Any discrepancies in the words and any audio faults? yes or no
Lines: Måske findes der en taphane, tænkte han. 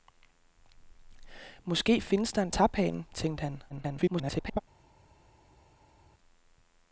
yes